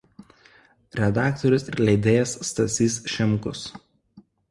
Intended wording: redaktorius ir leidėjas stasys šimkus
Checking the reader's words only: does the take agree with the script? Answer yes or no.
yes